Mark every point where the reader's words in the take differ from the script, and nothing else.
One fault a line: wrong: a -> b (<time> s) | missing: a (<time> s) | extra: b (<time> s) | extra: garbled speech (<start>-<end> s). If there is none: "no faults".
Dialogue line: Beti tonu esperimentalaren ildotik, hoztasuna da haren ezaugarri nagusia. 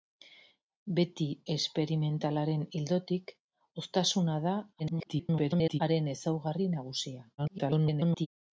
missing: tonu (1.3 s)
extra: garbled speech (4.8-5.8 s)
extra: garbled speech (7.4-8.3 s)